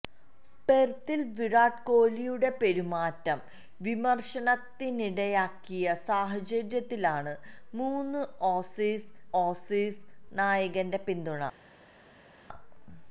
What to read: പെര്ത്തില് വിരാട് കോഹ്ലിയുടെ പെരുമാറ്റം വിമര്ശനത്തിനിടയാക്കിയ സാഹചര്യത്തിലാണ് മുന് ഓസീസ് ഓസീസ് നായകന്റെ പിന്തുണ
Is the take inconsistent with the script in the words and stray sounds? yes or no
no